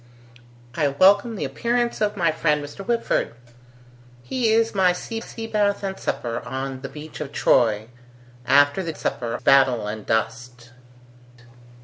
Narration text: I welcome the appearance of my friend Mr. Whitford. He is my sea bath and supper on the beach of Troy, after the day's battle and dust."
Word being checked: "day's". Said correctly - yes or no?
no